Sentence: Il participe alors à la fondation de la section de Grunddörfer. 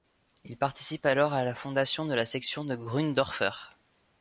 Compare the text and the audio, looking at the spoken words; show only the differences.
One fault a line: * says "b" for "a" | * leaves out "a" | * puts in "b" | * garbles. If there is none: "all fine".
all fine